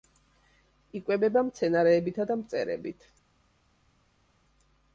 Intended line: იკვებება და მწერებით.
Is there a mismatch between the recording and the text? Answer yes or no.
yes